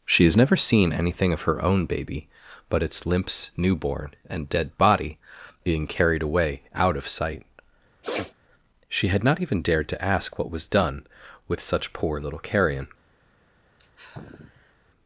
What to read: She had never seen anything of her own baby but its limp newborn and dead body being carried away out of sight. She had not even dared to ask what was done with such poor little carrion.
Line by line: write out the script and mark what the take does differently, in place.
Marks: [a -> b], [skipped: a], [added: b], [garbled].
She [had -> has] never seen anything of her own baby but its [limp -> limps] newborn and dead body being carried away out of sight. She had not even dared to ask what was done with such poor little carrion.